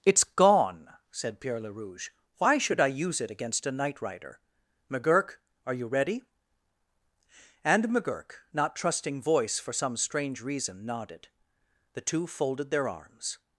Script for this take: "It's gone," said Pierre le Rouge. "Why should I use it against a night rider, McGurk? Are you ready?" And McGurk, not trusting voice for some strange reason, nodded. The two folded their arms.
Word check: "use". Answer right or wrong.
right